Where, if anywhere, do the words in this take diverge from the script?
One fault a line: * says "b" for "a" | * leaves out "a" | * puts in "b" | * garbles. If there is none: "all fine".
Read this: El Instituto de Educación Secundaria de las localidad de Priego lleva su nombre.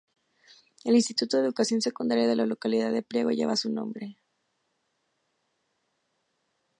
* says "la" for "las"